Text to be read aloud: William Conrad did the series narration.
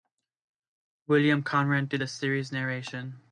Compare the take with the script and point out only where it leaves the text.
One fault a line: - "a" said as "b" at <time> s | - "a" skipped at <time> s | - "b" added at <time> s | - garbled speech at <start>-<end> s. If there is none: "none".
none